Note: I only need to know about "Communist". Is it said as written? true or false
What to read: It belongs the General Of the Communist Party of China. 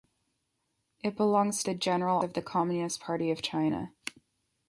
true